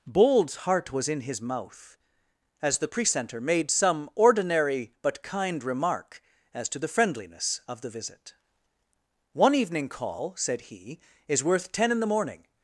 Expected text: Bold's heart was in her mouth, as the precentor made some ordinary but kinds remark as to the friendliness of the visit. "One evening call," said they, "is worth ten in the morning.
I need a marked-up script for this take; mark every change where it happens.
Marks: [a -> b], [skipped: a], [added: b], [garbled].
Bold's heart was in [her -> his] mouth, as the precentor made some ordinary but [kinds -> kind] remark as to the friendliness of the visit. "One evening call," said [they, -> he] "is worth ten in the morning.